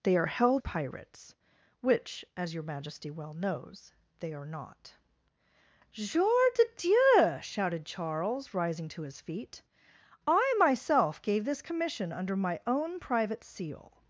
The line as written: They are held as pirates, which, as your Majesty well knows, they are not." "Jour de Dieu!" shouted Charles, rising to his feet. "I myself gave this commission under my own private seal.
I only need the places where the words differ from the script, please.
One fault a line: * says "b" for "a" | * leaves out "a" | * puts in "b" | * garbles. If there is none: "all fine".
* leaves out "as"